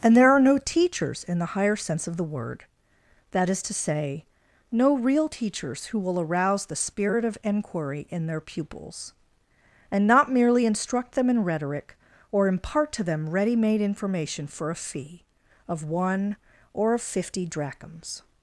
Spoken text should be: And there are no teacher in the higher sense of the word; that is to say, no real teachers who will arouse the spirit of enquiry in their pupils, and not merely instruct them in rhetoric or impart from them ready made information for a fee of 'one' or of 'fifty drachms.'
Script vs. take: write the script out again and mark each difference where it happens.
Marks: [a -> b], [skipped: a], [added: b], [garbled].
And there are no [teacher -> teachers] in the higher sense of the word; that is to say, no real teachers who will arouse the spirit of enquiry in their pupils, and not merely instruct them in rhetoric or impart [from -> to] them ready made information for a fee of 'one' or of 'fifty drachms.'